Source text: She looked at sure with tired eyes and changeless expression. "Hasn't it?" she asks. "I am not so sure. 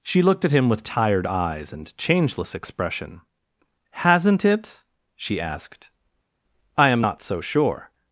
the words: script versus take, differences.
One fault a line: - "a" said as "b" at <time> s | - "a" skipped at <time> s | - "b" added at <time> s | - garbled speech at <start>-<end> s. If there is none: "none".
- "sure" said as "him" at 0.5 s
- "asks" said as "asked" at 5.4 s